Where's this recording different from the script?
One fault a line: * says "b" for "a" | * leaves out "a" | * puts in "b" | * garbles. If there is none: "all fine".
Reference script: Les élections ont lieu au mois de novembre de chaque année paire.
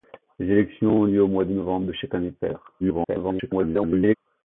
* garbles